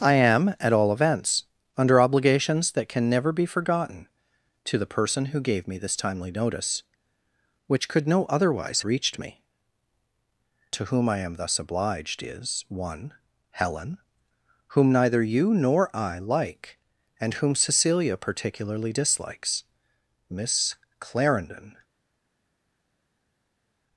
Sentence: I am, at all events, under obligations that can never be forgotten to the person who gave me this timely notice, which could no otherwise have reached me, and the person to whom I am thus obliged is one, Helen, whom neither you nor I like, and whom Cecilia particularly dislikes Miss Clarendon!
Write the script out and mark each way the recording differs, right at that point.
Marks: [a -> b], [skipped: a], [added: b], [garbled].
I am, at all events, under obligations that can never be forgotten to the person who gave me this timely notice, which could no otherwise [skipped: have] reached me, [skipped: and the person] to whom I am thus obliged is one, Helen, whom neither you nor I like, and whom Cecilia particularly dislikes Miss Clarendon!